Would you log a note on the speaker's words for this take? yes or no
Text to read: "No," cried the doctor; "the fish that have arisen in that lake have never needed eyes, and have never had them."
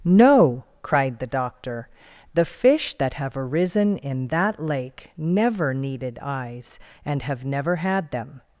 yes